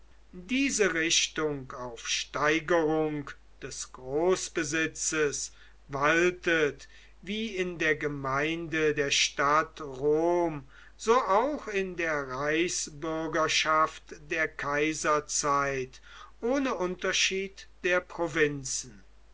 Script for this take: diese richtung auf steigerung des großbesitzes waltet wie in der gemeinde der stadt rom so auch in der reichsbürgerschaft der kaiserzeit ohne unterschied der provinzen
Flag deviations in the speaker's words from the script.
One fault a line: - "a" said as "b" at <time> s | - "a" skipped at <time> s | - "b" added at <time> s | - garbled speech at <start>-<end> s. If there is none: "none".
none